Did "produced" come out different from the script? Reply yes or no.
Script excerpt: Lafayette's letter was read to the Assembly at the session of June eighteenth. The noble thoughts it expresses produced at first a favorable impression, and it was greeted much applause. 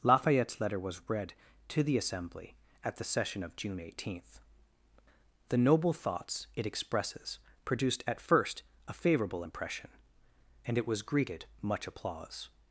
no